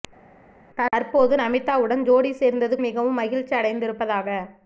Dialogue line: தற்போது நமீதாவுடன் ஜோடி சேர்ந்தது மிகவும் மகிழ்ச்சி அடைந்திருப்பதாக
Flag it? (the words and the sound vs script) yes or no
no